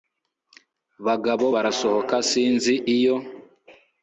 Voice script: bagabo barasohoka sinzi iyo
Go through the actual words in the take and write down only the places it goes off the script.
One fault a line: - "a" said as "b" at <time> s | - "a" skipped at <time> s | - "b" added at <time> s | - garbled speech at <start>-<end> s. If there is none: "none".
none